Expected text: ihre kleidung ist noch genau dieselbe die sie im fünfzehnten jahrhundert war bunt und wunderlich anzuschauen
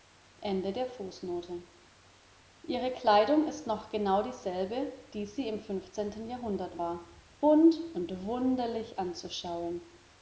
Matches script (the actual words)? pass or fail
pass